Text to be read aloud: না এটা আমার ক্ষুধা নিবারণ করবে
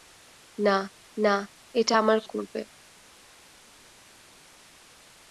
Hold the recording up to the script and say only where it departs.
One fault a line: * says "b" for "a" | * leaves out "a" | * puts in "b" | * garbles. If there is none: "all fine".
* puts in "না"
* leaves out "ক্ষুধা নিবারণ"